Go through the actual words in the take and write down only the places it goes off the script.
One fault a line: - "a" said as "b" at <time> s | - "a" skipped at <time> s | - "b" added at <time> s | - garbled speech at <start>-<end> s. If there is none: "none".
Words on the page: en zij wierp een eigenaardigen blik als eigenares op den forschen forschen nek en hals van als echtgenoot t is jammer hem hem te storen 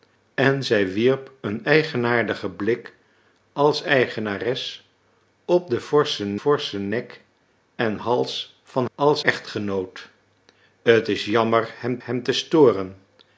none